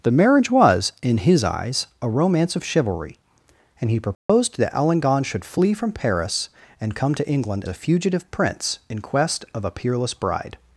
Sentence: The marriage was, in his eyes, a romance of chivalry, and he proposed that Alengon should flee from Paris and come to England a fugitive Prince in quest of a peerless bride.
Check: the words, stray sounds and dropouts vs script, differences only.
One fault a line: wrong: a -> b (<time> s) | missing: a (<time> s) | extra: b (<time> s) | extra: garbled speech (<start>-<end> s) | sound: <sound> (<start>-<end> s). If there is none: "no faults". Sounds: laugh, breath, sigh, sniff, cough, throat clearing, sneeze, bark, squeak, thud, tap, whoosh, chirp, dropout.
sound: dropout (4.1-4.3 s)